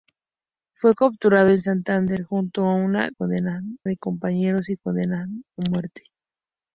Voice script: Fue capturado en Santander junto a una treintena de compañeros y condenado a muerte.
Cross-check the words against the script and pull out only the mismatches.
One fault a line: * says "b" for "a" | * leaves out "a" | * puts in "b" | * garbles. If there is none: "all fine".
* says "condenado" for "treintena"